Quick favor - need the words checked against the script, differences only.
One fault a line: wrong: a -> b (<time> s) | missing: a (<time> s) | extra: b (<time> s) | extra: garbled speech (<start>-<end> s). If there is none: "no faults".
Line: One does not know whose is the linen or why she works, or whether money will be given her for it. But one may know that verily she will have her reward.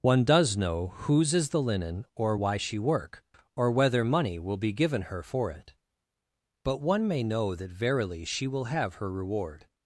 missing: not (0.6 s)
wrong: works -> work (2.8 s)